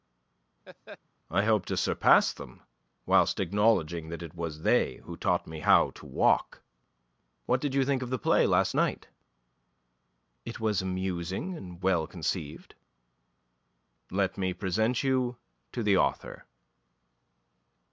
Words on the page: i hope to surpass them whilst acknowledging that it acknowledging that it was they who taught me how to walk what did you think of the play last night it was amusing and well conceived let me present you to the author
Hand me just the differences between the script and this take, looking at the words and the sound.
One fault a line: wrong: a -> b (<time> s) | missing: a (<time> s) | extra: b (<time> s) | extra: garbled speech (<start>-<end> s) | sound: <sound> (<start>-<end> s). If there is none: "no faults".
sound: laugh (0.7-1.0 s)
missing: acknowledging that it (4.3 s)